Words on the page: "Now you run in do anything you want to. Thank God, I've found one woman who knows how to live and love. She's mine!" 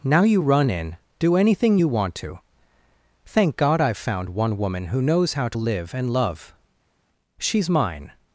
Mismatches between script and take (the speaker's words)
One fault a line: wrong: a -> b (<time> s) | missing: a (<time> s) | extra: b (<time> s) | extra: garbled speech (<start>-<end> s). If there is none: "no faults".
no faults